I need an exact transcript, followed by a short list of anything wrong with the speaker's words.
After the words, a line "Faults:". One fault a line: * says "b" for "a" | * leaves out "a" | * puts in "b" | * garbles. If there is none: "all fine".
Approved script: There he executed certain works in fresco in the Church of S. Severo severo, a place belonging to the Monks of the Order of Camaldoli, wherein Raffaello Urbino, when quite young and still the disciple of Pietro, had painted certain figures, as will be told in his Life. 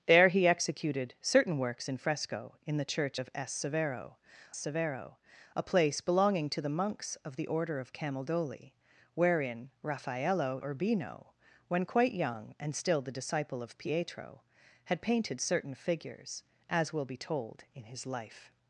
There he executed certain works in fresco in the Church of S. Severo severo, a place belonging to the Monks of the Order of Camaldoli, wherein Raffaello Urbino, when quite young and still the disciple of Pietro, had painted certain figures, as will be told in his Life.
Faults:
all fine